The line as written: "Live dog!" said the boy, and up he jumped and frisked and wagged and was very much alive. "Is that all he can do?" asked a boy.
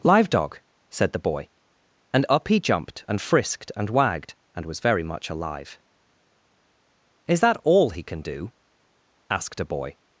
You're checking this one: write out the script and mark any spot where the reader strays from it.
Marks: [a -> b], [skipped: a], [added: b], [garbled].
"Live dog!" said the boy, and up he jumped and frisked and wagged and was very much alive. "Is that all he can do?" asked a boy.